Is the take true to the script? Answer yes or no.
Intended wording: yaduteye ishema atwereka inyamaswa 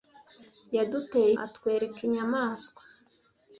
no